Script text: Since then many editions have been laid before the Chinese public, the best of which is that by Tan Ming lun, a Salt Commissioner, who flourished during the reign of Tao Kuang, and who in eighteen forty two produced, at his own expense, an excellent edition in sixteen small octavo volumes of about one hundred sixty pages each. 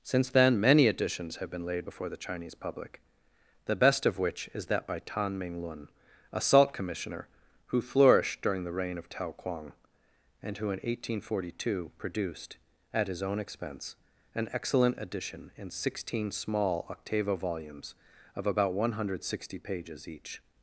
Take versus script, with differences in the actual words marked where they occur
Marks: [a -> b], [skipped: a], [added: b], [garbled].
Since then many editions have been laid before the Chinese public, the best of which is that by Tan Ming lun, a Salt Commissioner, who flourished during the reign of Tao Kuang, and who in eighteen forty two produced, at his own expense, an excellent edition in sixteen small octavo volumes of about one hundred sixty pages each.